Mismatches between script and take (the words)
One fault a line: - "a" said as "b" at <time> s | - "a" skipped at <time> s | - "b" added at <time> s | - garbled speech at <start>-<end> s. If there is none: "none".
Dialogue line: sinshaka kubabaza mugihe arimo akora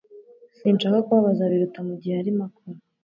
- "biruta" added at 1.5 s